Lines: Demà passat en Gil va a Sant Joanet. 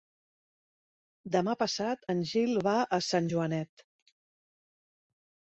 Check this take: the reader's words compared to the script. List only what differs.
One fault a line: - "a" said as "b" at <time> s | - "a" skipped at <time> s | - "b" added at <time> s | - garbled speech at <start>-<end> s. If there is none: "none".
none